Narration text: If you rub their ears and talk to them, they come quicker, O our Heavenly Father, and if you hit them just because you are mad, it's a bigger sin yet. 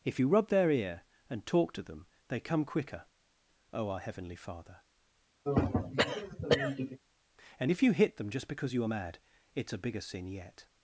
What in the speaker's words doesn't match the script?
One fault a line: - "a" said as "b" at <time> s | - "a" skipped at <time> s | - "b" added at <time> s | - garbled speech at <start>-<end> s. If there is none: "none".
- "ears" said as "ear" at 0.7 s